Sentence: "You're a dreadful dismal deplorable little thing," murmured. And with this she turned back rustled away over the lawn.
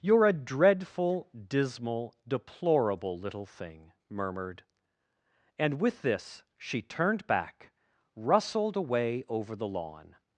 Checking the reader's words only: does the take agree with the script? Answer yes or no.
yes